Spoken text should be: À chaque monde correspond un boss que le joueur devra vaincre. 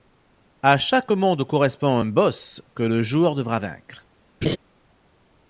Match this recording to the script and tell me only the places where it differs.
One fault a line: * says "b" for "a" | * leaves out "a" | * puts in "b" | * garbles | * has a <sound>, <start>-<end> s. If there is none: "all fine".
* has a laugh, 4.4-4.6 s